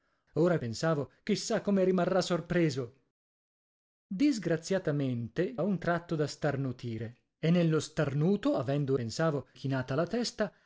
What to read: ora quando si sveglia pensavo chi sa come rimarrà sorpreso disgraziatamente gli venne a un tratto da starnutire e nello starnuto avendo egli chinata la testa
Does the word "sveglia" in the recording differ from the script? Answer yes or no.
yes